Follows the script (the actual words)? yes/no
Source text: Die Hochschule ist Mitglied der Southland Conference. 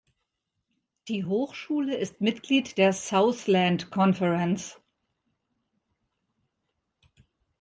yes